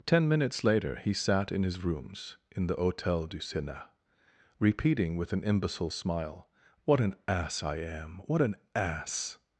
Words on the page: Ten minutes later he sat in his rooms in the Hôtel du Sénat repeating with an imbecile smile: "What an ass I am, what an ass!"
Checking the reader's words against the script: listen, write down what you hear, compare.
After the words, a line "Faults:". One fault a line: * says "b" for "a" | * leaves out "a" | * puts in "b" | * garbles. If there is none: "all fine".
Ten minutes later he sat in his rooms in the Hôtel du Sénat repeating with an imbecile smile: "What an ass I am, what an ass!"
Faults:
all fine